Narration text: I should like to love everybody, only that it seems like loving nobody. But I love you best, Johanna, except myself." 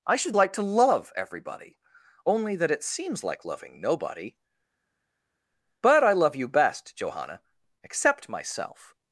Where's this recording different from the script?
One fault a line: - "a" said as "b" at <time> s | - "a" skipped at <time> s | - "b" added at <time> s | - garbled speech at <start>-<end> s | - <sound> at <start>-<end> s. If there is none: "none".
none